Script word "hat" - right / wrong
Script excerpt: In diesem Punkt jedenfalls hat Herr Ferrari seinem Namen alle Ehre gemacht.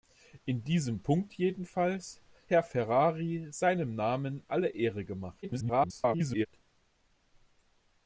wrong